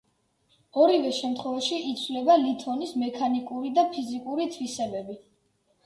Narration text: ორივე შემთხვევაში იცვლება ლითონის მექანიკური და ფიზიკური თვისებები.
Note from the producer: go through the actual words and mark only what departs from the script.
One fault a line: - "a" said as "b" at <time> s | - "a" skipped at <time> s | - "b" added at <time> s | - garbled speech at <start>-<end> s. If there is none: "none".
none